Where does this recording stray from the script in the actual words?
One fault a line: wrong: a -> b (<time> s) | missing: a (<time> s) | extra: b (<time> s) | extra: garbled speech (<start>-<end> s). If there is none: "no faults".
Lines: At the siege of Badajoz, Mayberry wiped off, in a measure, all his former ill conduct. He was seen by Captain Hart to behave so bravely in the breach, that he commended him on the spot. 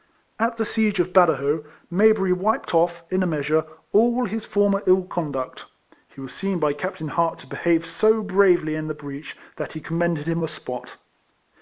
missing: on (10.4 s)